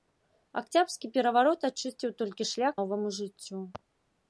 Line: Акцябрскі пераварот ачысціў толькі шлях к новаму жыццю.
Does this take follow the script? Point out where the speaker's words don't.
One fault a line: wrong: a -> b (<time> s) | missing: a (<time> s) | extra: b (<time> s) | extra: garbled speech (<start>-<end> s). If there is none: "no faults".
missing: к (2.7 s)